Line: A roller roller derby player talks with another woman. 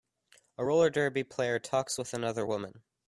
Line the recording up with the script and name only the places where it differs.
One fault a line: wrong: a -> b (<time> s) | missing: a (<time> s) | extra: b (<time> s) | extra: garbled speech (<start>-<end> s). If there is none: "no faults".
missing: roller (0.9 s)